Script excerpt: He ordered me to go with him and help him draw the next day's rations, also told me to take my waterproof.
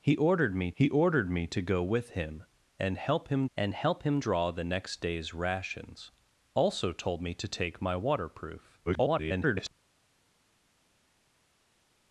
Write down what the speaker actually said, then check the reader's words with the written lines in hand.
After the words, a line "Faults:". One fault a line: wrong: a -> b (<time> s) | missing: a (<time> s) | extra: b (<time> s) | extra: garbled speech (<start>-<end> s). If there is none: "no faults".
He ordered me he ordered me to go with him and help him and help him draw the next day's rations, also told me to take my waterproof. [garbled]
Faults:
extra: he ordered me (0.8 s)
extra: and help him (3.6 s)
extra: garbled speech (8.9-9.7 s)